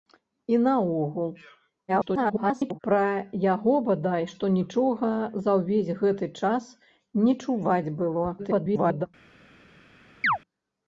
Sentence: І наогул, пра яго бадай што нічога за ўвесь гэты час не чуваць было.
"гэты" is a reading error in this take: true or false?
false